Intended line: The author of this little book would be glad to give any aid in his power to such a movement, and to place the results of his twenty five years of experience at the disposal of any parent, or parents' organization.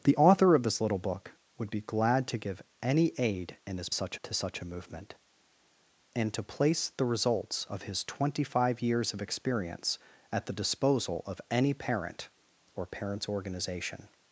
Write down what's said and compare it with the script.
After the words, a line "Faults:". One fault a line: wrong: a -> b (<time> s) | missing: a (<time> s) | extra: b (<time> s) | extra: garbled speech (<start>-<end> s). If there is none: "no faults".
The author of this little book would be glad to give any aid in his such to such a movement, and to place the results of his twenty five years of experience at the disposal of any parent, or parents' organization.
Faults:
wrong: power -> such (3.9 s)